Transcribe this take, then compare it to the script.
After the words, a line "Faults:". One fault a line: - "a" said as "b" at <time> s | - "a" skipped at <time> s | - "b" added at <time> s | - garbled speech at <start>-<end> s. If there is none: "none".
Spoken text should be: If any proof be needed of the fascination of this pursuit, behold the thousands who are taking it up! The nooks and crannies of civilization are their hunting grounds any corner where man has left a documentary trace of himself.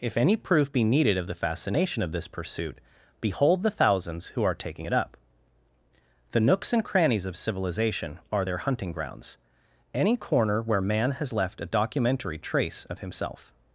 If any proof be needed of the fascination of this pursuit, behold the thousands who are taking it up! The nooks and crannies of civilization are their hunting grounds any corner where man has left a documentary trace of himself.
Faults:
none